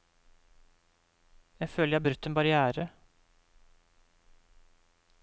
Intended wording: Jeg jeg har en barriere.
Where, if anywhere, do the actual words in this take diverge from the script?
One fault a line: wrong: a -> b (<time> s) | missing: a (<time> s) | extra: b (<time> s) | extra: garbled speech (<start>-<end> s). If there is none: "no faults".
extra: føler (1.7 s)
extra: brutt (2.0 s)